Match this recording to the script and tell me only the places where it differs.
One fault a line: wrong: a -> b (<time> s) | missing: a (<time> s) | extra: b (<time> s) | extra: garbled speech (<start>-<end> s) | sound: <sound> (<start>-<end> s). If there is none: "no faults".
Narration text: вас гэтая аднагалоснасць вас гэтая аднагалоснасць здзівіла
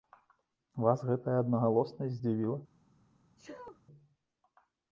missing: вас гэтая аднагалоснасць (2.2 s)
sound: sneeze (3.4-3.8 s)